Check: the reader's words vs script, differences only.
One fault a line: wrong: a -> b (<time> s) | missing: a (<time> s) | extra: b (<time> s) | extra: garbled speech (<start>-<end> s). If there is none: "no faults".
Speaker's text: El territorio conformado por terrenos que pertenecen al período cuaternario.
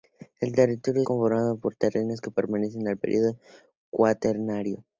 no faults